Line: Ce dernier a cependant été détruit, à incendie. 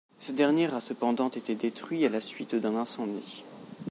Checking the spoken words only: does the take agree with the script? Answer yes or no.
no